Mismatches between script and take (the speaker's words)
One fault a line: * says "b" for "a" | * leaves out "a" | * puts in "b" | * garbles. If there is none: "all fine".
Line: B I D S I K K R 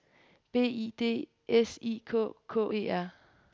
* puts in "E"